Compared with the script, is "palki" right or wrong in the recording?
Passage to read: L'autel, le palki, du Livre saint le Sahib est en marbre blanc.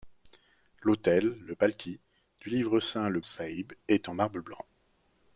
right